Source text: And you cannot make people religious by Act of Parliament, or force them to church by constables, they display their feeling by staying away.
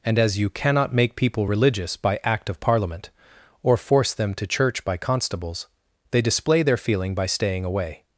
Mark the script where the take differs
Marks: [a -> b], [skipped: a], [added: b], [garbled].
And [added: as] you cannot make people religious by Act of Parliament, or force them to church by constables, they display their feeling by staying away.